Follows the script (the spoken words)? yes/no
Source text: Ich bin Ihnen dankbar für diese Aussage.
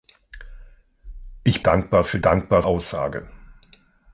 no